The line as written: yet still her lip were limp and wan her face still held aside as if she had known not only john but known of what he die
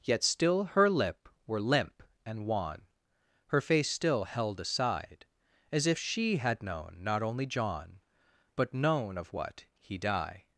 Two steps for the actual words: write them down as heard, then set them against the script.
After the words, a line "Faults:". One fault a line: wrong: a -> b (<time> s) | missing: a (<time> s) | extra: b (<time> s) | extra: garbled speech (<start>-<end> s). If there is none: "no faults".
yet still her lip were limp and wan her face still held aside as if she had known not only john but known of what he die
Faults:
no faults